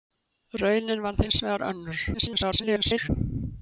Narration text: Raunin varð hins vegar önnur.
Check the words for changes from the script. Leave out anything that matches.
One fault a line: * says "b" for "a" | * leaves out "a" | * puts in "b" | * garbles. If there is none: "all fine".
* garbles